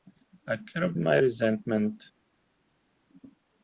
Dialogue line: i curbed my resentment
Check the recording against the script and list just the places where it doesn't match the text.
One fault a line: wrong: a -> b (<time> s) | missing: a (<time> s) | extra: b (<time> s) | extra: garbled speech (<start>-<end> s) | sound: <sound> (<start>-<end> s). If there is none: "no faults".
no faults